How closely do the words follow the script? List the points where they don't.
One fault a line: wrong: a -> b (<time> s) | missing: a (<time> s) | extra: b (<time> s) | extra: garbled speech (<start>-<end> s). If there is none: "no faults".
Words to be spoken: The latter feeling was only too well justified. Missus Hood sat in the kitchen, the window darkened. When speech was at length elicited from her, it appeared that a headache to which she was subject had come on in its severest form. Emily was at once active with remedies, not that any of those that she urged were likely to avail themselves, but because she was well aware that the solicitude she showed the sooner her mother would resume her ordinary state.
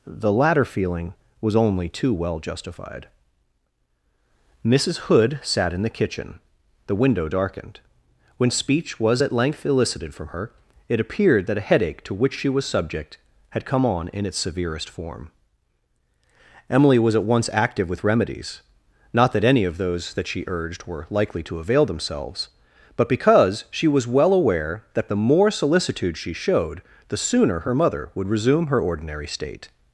extra: more (25.1 s)